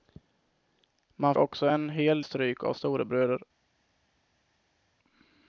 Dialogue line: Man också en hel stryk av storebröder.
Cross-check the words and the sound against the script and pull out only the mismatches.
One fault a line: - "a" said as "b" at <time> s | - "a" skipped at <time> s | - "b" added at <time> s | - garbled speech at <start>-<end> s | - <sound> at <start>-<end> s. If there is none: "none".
none